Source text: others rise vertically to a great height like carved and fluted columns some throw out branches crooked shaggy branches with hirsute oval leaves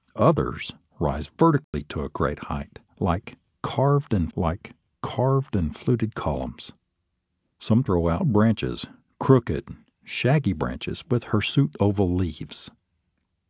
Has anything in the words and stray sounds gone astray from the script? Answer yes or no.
yes